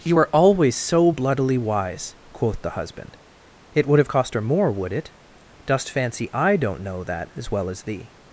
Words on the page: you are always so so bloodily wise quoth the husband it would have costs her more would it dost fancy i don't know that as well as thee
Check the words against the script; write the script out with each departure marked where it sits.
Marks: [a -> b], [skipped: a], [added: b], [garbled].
you are always so [skipped: so] bloodily wise quoth the husband it would have [costs -> cost] her more would it dost fancy i don't know that as well as thee